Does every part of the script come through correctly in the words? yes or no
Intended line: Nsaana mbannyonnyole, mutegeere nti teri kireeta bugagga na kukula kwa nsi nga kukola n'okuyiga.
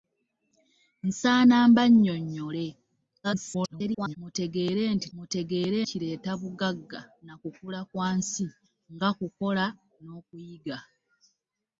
no